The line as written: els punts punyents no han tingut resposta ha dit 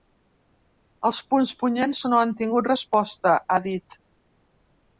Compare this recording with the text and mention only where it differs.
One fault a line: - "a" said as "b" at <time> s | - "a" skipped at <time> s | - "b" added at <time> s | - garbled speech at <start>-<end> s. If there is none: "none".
none